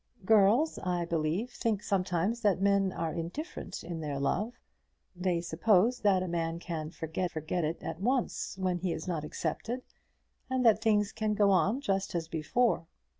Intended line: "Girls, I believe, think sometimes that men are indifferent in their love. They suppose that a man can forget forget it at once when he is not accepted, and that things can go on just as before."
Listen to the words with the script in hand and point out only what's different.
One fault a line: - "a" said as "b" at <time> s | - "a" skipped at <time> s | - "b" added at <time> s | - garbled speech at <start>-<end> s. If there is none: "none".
none